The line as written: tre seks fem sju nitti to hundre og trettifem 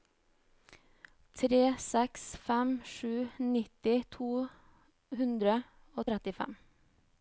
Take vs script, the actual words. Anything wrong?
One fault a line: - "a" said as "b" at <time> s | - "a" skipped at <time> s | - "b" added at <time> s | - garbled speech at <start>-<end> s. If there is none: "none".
none